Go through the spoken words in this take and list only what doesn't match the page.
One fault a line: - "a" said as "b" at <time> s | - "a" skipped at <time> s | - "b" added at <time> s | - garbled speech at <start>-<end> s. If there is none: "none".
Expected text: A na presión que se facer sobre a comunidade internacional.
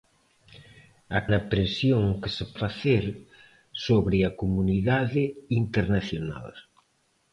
none